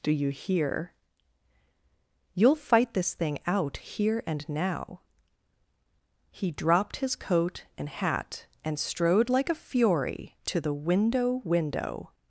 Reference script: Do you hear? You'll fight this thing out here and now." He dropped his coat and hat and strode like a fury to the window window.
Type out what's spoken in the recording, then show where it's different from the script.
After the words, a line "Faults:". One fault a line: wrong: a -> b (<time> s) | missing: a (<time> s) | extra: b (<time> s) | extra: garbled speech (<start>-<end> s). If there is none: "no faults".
Do you hear? You'll fight this thing out here and now." He dropped his coat and hat and strode like a fury to the window window.
Faults:
no faults